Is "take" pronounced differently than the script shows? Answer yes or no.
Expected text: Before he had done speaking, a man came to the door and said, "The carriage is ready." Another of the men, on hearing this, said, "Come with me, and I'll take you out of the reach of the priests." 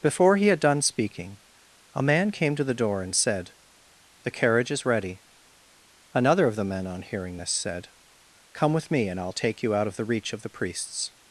no